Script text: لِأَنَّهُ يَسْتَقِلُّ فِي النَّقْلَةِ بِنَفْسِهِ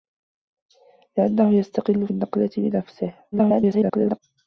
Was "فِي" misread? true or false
true